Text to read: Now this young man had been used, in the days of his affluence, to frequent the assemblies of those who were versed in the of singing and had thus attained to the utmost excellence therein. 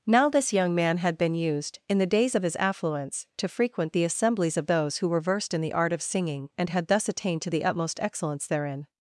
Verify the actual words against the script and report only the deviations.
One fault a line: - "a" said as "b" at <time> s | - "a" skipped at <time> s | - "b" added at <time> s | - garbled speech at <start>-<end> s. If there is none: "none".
- "art" added at 5.7 s